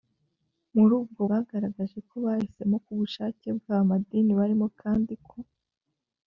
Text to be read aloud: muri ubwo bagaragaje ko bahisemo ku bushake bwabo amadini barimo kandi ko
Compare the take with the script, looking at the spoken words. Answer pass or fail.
pass